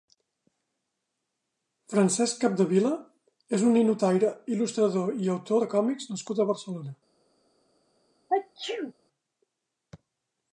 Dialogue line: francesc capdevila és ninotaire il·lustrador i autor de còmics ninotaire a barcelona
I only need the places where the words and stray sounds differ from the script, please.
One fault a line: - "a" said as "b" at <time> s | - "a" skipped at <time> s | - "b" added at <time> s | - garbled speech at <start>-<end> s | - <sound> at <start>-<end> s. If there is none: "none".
- "un" added at 3.7 s
- "ninotaire" said as "nascut" at 6.1 s
- sneeze at 8.3-8.9 s